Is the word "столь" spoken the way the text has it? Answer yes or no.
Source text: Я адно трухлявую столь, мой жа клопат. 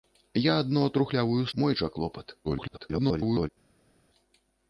no